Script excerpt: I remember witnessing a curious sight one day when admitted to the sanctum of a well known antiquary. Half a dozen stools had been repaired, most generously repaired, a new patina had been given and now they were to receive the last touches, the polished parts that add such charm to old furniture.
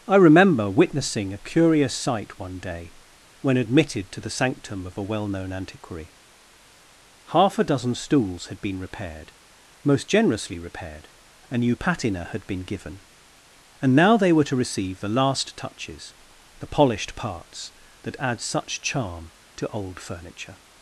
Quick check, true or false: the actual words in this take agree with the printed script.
true